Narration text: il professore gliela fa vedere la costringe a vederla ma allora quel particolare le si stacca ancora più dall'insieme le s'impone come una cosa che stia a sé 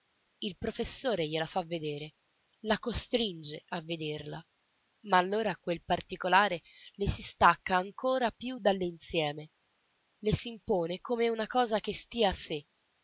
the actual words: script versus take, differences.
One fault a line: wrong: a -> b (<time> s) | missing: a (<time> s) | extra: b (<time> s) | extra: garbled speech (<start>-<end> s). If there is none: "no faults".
no faults